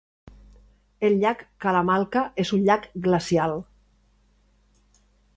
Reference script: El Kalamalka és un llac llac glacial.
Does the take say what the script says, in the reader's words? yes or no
no